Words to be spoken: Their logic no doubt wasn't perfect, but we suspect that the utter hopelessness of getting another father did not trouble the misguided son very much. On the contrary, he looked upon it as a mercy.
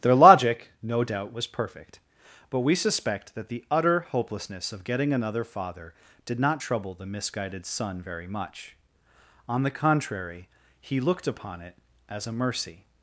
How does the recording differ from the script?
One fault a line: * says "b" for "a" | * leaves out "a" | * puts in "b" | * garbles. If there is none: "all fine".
* says "was" for "wasn't"